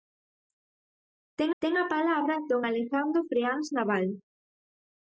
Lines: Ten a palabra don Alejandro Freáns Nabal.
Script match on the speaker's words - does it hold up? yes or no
no